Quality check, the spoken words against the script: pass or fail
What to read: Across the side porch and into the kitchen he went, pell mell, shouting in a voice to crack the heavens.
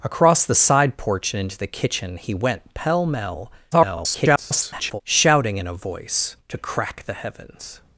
fail